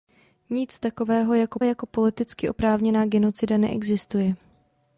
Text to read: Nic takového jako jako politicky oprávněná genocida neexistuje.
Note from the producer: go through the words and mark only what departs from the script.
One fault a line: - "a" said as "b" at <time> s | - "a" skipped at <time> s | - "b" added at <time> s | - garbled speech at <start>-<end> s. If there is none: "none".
none